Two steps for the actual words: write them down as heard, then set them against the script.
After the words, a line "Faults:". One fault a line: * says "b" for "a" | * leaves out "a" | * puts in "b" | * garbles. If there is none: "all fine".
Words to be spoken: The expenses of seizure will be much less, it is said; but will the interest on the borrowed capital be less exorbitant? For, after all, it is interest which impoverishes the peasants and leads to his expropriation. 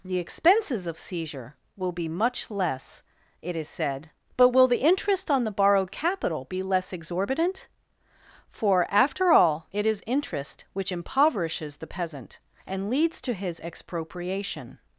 The expenses of seizure will be much less, it is said; but will the interest on the borrowed capital be less exorbitant? For, after all, it is interest which impoverishes the peasant and leads to his expropriation.
Faults:
* says "peasant" for "peasants"